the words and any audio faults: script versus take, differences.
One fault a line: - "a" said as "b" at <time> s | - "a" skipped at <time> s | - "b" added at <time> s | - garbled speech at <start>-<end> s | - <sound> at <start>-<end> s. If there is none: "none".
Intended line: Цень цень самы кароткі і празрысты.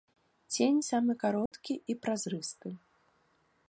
- "цень" skipped at 0.8 s
- dropout at 1.5-1.5 s